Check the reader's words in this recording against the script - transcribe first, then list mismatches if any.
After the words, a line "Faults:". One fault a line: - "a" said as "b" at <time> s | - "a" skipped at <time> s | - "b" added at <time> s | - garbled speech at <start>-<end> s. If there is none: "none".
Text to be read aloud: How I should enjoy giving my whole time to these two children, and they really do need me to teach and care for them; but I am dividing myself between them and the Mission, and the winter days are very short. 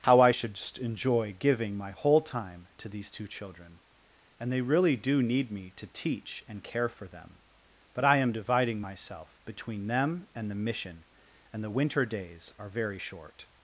How I should enjoy giving my whole time to these two children, and they really do need me to teach and care for them; but I am dividing myself between them and the Mission, and the winter days are very short.
Faults:
none